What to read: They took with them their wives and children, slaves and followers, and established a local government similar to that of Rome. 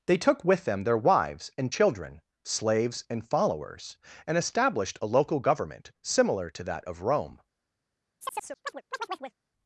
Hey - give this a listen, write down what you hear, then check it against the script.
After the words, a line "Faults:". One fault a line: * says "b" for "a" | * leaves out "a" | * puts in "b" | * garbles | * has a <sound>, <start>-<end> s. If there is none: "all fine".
They took with them their wives and children, slaves and followers, and established a local government similar to that of Rome.
Faults:
* has a chirp, 8.2-9.4 s